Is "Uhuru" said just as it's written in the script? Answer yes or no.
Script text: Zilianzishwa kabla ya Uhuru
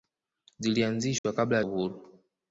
yes